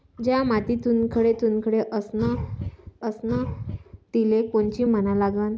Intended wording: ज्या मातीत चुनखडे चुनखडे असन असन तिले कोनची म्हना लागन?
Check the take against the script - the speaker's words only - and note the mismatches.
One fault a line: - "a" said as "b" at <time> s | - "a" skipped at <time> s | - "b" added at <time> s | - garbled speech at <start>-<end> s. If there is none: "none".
none